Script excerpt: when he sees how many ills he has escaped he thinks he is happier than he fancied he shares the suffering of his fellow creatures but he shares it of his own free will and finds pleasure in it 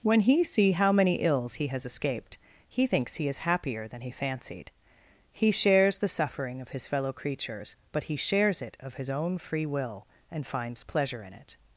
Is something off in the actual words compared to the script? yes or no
yes